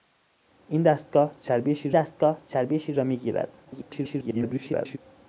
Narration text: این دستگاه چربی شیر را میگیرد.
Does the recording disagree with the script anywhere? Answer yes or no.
yes